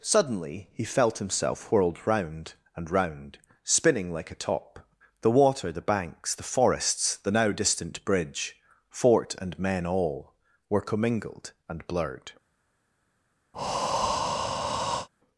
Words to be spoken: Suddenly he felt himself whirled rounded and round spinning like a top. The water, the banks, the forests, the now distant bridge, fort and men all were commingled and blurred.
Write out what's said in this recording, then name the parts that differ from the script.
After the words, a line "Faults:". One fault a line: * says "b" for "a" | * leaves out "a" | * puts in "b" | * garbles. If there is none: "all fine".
Suddenly he felt himself whirled round and round spinning like a top. The water, the banks, the forests, the now distant bridge, fort and men all were commingled and blurred.
Faults:
* says "round" for "rounded"